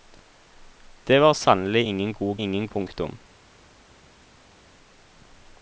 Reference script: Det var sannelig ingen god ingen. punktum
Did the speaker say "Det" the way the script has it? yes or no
yes